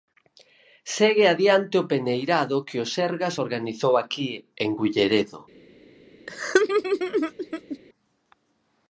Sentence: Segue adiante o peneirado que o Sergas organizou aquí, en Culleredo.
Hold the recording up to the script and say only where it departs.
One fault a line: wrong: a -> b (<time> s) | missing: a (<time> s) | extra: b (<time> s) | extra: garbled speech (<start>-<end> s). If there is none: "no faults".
no faults